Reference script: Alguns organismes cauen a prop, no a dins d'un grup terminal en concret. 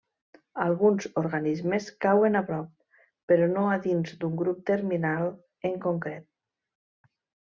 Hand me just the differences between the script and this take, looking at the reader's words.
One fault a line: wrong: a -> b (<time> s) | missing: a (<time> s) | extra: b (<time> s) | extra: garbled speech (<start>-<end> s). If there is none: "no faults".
extra: però (3.3 s)